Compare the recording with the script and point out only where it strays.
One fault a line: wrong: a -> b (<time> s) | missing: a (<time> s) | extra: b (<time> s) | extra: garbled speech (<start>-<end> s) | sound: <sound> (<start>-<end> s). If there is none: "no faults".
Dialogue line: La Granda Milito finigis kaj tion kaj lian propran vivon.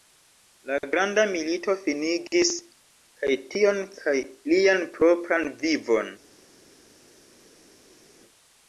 no faults